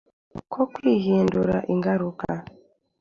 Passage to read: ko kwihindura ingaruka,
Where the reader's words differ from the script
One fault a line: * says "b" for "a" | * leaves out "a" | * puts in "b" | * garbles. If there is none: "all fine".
all fine